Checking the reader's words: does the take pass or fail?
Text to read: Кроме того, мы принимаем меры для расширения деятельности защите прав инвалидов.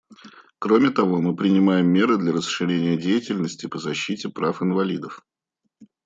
fail